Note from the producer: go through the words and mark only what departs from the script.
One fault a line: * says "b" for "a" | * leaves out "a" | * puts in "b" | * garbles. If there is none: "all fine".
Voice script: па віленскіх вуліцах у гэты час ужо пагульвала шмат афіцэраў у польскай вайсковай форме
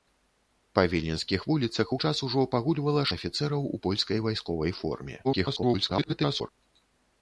* leaves out "гэты"
* leaves out "шмат"
* garbles